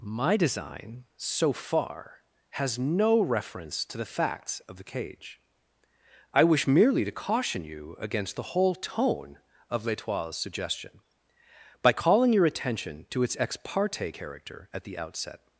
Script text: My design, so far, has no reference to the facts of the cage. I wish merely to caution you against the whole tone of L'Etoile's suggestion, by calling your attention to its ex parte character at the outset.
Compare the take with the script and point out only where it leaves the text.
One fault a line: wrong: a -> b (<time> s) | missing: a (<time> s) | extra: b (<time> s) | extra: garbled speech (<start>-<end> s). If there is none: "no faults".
no faults